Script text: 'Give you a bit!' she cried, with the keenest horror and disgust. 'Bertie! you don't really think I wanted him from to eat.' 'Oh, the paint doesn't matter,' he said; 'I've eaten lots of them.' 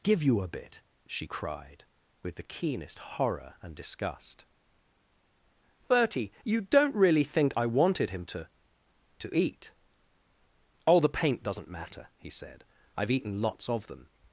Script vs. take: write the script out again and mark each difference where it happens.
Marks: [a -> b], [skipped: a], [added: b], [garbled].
'Give you a bit!' she cried, with the keenest horror and disgust. 'Bertie! you don't really think I wanted him [from -> to] to eat.' 'Oh, the paint doesn't matter,' he said; 'I've eaten lots of them.'